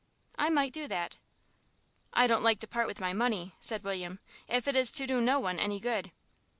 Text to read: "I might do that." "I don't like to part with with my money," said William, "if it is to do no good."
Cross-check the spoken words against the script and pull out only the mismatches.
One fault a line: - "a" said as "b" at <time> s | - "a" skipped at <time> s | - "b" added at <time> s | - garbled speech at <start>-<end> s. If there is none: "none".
- "with" skipped at 3.0 s
- "one any" added at 5.4 s